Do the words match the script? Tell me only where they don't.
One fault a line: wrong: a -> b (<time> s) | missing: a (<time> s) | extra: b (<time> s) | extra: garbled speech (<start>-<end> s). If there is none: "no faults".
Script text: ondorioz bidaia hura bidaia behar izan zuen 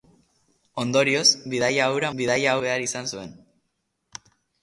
no faults